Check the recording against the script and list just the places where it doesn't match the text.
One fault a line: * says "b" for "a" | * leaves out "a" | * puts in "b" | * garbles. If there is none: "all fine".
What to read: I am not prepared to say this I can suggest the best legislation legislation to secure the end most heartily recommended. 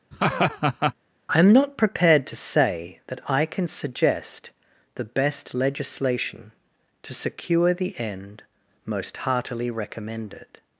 * says "that" for "this"
* leaves out "legislation"